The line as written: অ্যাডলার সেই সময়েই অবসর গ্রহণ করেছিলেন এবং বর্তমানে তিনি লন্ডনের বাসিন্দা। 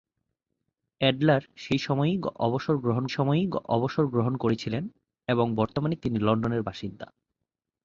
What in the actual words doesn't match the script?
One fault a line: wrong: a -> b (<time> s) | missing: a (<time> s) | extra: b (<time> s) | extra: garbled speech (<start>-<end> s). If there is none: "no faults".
extra: সময়েই অবসর গ্রহণ (3.1 s)